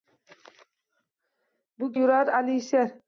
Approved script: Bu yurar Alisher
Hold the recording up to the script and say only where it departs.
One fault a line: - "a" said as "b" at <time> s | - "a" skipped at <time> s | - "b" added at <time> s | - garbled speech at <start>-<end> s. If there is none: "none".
none